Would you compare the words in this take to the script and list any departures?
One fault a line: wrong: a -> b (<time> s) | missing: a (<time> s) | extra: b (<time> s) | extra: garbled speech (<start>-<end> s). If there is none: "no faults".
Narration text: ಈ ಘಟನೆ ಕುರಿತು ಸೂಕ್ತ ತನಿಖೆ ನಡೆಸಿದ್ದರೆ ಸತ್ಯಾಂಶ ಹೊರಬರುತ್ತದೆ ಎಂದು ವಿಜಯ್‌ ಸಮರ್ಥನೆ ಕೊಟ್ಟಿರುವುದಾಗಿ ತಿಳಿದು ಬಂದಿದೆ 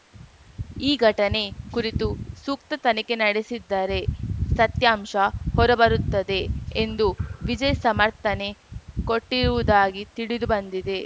no faults